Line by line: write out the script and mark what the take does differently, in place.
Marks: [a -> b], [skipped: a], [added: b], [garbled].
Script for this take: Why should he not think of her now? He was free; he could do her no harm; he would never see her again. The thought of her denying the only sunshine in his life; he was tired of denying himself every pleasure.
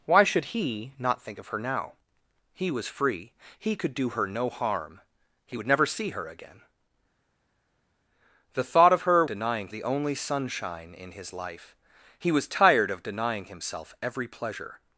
Why should he not think of her now? He was free; he could do her no harm; he would never see her again. The thought of her denying the only sunshine in his life; he was tired of denying himself every pleasure.